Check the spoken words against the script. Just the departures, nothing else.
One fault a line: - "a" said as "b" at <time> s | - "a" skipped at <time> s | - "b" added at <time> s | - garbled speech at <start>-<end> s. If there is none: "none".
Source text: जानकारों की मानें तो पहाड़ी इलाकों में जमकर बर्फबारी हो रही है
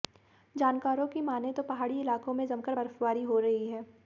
none